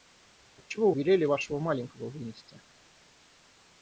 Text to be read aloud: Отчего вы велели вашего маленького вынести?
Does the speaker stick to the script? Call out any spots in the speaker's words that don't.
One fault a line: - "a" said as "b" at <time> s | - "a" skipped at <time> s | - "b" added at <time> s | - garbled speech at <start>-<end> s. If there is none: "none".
- "вы" skipped at 0.9 s